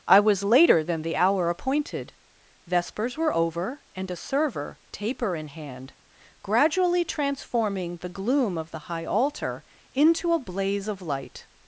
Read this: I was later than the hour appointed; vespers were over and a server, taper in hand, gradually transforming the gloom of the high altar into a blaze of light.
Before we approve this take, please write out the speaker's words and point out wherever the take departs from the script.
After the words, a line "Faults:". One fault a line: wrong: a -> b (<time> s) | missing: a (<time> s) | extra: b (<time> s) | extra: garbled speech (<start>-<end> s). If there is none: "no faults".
I was later than the hour appointed; vespers were over and a server, taper in hand, gradually transforming the gloom of the high altar into a blaze of light.
Faults:
no faults